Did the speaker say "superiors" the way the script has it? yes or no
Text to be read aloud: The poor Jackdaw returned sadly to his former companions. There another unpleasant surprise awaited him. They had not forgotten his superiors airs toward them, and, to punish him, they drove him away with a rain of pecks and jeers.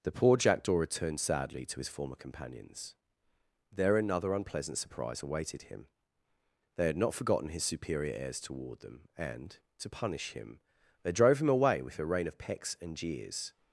no